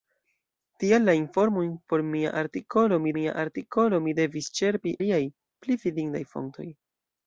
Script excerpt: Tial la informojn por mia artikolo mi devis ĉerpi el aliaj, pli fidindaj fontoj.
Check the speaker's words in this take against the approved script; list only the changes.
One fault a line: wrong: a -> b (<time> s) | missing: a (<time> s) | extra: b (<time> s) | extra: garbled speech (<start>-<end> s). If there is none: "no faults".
extra: mia artikolo mi (3.2 s)
missing: el (5.0 s)